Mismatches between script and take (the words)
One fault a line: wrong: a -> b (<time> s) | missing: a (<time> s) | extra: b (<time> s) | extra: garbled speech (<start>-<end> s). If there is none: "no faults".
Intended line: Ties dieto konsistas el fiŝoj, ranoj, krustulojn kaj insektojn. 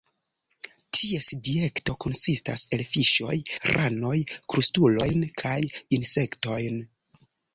no faults